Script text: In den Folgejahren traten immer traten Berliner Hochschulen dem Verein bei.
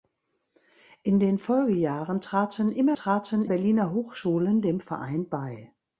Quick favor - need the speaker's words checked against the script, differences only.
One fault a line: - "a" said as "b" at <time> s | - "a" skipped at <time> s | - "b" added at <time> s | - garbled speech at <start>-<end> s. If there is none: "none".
none